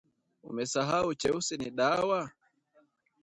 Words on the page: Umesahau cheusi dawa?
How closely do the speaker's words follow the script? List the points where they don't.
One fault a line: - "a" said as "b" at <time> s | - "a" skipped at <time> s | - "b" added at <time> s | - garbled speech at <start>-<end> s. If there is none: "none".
- "ni" added at 1.6 s